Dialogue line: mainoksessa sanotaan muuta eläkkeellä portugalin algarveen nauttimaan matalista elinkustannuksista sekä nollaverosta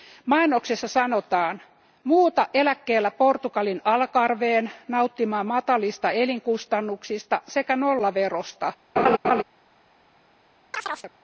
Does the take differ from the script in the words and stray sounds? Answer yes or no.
yes